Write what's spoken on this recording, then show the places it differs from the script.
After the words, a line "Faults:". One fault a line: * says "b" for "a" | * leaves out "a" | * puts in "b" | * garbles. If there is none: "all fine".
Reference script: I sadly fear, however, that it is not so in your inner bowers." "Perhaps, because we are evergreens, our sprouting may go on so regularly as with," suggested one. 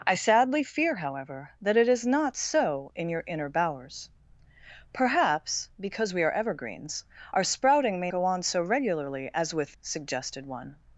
I sadly fear, however, that it is not so in your inner bowers." "Perhaps, because we are evergreens, our sprouting may go on so regularly as with," suggested one.
Faults:
all fine